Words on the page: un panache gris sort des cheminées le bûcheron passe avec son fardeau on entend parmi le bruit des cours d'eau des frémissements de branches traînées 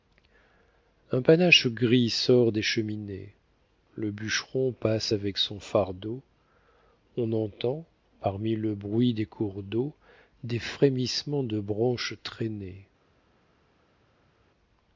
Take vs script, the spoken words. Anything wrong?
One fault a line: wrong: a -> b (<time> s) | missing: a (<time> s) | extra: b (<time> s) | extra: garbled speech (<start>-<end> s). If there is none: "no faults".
no faults